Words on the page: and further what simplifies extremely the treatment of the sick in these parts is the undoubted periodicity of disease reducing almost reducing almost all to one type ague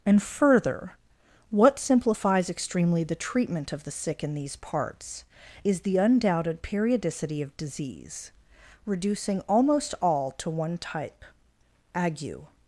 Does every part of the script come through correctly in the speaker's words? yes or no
no